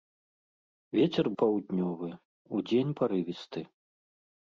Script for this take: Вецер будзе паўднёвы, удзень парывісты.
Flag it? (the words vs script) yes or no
yes